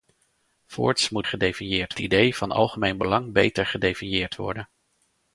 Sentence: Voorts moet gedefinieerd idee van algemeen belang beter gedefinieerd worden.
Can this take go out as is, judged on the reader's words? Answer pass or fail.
pass